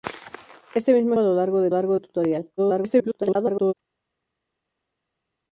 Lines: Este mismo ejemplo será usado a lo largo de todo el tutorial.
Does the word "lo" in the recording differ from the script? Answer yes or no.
no